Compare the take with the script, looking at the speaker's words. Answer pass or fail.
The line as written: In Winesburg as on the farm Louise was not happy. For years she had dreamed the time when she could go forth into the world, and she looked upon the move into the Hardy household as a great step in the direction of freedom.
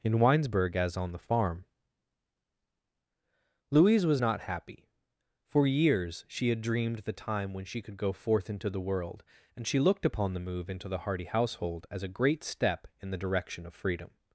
pass